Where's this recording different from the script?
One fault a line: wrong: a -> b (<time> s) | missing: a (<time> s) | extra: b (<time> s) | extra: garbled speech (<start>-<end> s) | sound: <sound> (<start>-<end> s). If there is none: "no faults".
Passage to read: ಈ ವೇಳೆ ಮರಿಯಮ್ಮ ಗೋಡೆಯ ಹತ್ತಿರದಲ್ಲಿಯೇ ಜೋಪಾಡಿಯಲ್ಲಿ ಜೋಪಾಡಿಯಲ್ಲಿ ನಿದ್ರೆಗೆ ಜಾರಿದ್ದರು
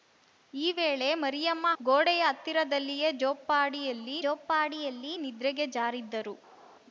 no faults